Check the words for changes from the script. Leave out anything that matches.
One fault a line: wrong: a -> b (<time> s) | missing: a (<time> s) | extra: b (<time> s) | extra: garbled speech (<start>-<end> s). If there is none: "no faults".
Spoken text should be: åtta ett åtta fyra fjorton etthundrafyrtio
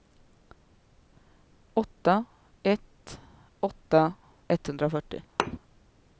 missing: fyra fjorton (4.1 s)